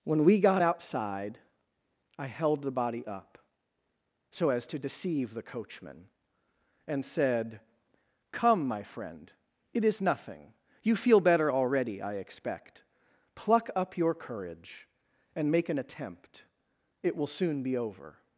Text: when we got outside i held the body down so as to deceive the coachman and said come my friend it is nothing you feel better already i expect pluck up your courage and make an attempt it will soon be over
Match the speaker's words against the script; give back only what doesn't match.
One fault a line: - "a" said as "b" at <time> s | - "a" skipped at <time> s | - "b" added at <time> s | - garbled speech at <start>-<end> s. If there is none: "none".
- "down" said as "up" at 3.0 s